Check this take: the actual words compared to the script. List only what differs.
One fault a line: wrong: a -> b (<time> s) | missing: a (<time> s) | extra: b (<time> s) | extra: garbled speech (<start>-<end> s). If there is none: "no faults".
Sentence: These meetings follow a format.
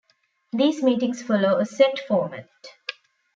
extra: set (1.7 s)